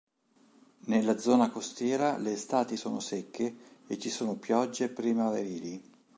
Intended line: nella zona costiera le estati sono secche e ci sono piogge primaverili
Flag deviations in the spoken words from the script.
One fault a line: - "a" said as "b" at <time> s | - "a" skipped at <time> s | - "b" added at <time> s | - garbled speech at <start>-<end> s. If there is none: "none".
none